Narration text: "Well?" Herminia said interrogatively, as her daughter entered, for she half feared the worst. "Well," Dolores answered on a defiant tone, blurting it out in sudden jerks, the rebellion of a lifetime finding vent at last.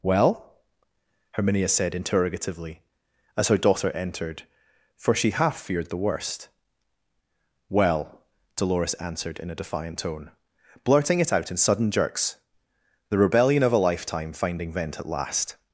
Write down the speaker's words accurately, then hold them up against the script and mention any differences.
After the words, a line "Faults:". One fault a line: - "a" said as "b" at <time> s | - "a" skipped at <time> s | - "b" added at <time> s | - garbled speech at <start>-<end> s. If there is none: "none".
"Well?" Herminia said interrogatively, as her daughter entered, for she half feared the worst. "Well," Dolores answered in a defiant tone, blurting it out in sudden jerks, the rebellion of a lifetime finding vent at last.
Faults:
- "on" said as "in" at 9.4 s